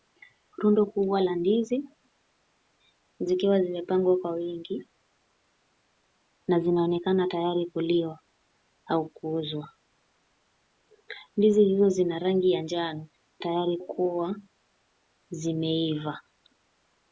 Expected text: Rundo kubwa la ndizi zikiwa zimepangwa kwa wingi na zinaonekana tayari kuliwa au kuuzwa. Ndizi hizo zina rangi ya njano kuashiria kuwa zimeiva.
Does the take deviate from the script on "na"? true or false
false